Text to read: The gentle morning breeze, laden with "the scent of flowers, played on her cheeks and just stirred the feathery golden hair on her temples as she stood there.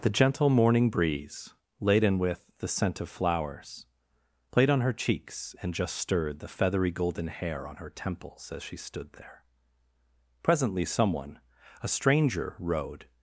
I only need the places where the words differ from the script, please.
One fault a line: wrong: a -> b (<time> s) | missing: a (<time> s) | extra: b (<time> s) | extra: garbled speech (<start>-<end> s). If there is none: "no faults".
extra: Presently someone a stranger rode (10.4 s)